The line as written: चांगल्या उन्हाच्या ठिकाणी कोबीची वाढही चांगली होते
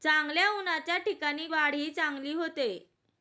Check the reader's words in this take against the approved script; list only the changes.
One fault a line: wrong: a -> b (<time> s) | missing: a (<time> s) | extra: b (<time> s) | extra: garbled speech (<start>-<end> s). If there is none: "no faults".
missing: कोबीची (1.5 s)